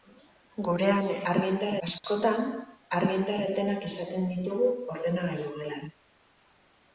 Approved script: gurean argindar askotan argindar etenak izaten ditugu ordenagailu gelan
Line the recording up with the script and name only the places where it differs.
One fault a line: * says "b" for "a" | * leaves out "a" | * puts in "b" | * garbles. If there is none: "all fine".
all fine